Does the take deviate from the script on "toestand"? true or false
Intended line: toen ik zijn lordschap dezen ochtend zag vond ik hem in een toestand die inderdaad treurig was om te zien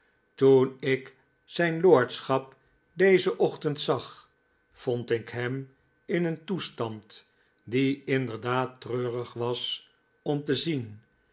false